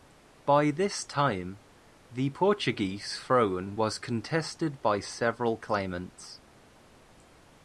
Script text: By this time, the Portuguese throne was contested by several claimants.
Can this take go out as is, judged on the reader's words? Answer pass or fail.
pass